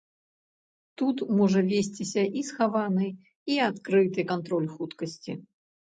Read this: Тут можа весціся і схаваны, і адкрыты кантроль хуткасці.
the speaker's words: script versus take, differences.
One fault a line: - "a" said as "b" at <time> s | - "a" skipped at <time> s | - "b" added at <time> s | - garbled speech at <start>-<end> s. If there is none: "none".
none